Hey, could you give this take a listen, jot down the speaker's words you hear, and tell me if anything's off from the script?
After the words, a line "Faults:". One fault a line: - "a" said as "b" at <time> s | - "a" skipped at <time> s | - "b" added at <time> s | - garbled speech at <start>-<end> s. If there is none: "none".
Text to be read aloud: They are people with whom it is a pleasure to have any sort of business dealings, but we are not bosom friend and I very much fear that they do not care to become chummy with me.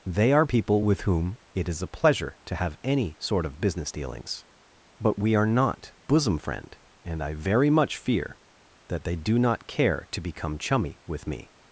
They are people with whom it is a pleasure to have any sort of business dealings, but we are not bosom friend and I very much fear that they do not care to become chummy with me.
Faults:
none